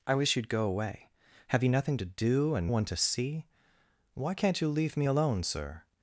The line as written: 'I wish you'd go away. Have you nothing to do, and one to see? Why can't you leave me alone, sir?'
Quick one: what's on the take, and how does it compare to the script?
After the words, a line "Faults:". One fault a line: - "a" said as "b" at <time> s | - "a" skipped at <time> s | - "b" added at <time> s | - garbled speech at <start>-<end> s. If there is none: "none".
'I wish you'd go away. Have you nothing to do, and one to see? Why can't you leave me alone, sir?'
Faults:
none